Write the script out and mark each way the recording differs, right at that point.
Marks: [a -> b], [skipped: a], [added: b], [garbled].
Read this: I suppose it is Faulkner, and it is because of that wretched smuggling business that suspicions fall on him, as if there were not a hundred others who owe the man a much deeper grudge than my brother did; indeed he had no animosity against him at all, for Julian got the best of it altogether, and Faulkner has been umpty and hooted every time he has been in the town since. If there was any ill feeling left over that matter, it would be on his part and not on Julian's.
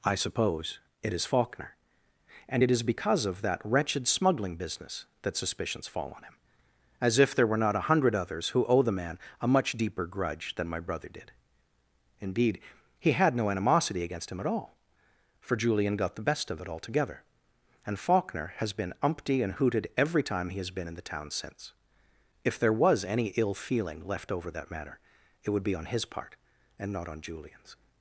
I suppose it is Faulkner, and it is because of that wretched smuggling business that suspicions fall on him, as if there were not a hundred others who owe the man a much deeper grudge than my brother did; indeed he had no animosity against him at all, for Julian got the best of it altogether, and Faulkner has been umpty and hooted every time he has been in the town since. If there was any ill feeling left over that matter, it would be on his part and not on Julian's.